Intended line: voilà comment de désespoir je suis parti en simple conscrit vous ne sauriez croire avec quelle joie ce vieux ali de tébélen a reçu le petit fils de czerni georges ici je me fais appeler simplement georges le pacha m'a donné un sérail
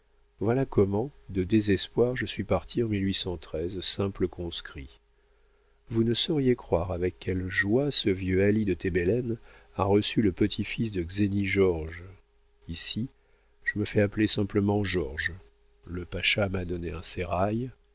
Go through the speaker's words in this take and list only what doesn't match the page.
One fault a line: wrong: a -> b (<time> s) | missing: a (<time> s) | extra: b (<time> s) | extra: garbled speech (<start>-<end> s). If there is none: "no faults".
no faults